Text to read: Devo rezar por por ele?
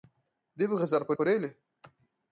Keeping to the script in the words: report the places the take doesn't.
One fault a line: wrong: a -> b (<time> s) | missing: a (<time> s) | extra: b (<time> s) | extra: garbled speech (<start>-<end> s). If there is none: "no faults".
no faults